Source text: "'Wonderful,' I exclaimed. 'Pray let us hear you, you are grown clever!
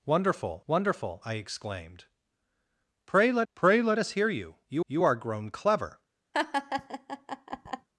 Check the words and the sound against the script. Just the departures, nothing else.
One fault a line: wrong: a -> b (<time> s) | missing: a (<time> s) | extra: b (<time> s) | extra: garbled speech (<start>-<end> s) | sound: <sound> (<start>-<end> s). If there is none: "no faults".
extra: wonderful (0.7 s)
extra: pray let (3.5 s)
extra: you (4.9 s)
sound: laugh (6.3-7.9 s)